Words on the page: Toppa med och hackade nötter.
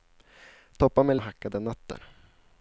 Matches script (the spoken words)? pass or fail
pass